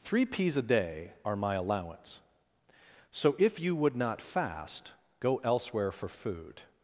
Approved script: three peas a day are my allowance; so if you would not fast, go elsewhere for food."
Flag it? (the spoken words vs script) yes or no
no